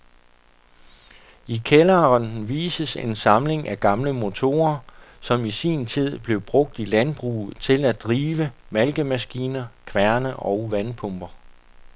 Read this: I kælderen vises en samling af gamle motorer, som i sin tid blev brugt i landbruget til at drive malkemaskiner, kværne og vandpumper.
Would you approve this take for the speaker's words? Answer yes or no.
yes